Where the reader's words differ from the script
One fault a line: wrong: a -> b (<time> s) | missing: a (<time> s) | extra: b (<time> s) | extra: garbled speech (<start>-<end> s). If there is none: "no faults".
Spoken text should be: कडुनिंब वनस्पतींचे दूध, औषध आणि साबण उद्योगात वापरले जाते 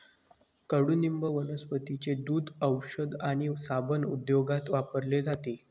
no faults